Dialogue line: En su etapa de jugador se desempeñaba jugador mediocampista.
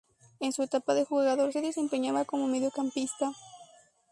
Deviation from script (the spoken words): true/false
true